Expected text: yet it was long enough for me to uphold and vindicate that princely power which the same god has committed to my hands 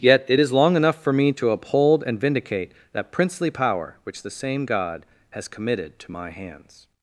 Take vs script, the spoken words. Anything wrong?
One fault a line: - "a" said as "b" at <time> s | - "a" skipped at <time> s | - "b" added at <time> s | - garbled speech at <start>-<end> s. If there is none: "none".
- "was" said as "is" at 0.4 s